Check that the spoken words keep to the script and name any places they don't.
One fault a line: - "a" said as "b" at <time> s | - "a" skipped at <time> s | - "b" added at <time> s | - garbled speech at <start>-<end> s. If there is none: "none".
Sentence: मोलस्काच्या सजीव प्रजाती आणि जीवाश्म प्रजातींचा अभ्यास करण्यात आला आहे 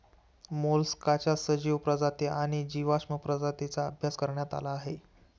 none